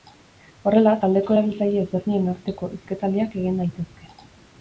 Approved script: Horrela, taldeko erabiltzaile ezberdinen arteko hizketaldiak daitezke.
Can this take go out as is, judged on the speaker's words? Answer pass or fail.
fail